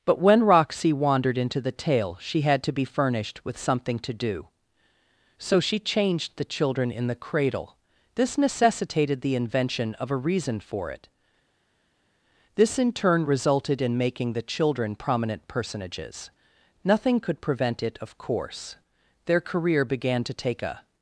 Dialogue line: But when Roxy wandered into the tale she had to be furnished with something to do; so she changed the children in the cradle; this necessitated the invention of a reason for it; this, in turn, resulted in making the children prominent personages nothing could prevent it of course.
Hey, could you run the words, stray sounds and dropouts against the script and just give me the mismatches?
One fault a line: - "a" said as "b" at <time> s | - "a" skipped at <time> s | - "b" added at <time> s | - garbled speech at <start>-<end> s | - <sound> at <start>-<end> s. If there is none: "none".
- "Their career began to take a" added at 19.2 s